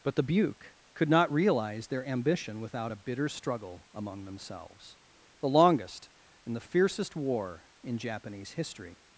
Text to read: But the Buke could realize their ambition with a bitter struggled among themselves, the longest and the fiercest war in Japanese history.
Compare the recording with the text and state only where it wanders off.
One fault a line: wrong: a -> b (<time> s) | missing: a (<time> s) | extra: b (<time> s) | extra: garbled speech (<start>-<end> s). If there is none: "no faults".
extra: not (1.1 s)
wrong: with -> without (2.6 s)
wrong: struggled -> struggle (3.3 s)